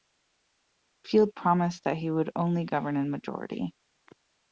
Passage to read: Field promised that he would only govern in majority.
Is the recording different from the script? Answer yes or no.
no